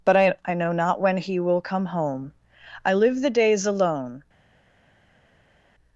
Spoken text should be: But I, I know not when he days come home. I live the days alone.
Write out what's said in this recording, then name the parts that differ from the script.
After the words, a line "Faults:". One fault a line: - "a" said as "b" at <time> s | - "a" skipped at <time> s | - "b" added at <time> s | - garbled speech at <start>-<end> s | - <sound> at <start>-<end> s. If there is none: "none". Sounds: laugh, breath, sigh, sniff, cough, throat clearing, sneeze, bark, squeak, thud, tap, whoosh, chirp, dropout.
But I, I know not when he will come home. I live the days alone.
Faults:
- "days" said as "will" at 1.4 s